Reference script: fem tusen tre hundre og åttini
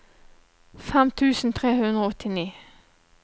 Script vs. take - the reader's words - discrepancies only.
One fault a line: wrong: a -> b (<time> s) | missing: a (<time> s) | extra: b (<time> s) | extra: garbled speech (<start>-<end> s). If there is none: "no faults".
no faults